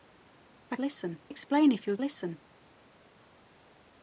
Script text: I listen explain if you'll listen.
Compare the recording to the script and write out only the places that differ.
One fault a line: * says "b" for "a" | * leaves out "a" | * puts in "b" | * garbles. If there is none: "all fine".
all fine